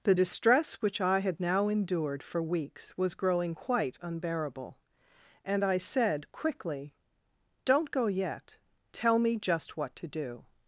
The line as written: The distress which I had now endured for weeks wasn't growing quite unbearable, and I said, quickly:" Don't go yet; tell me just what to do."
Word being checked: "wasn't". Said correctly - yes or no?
no